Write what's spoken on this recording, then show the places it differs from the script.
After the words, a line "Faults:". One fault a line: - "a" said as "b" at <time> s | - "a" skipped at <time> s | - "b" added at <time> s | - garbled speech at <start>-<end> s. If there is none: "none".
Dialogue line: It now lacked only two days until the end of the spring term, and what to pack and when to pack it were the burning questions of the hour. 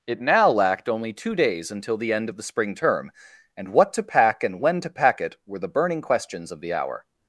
It now lacked only two days until the end of the spring term, and what to pack and when to pack it were the burning questions of the hour.
Faults:
none